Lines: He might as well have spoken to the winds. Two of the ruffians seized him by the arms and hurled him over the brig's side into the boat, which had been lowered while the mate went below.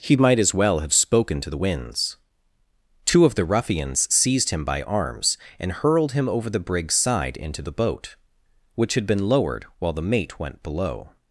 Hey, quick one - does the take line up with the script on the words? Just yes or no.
no